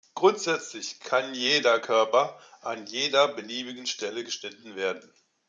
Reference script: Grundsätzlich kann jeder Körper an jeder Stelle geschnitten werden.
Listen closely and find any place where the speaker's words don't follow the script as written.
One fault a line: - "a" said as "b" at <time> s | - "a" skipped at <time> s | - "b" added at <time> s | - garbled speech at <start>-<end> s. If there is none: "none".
- "beliebigen" added at 3.3 s